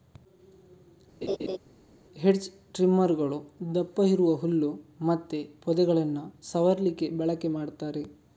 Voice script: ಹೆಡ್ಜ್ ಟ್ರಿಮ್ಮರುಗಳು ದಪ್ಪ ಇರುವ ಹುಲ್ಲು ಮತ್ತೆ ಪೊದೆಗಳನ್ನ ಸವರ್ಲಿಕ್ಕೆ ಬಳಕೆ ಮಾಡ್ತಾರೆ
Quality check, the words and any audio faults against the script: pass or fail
fail